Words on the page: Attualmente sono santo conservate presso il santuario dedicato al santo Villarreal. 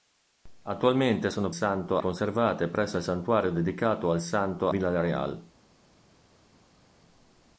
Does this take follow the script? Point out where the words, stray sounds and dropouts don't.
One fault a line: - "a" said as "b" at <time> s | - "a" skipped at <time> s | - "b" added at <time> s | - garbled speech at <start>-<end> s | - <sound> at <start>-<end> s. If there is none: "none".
none